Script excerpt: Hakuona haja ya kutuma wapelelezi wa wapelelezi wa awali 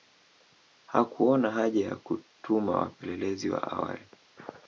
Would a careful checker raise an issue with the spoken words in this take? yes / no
yes